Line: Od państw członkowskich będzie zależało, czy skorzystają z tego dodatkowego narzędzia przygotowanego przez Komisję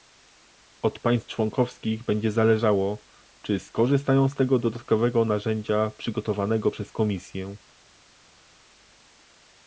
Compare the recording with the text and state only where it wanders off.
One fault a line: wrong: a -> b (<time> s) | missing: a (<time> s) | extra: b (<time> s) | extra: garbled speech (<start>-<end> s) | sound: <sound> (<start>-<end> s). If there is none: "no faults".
no faults